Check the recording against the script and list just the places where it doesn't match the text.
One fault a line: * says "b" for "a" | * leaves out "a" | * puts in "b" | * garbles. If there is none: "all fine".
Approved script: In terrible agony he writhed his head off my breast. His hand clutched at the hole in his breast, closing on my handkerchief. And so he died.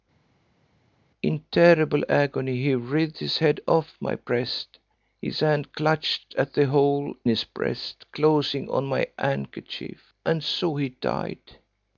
* leaves out "in"